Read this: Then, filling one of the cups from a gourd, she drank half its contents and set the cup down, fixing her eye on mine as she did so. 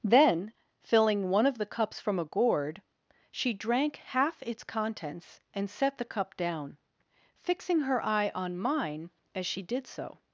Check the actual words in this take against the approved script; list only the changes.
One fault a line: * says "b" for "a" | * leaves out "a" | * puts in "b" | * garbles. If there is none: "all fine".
all fine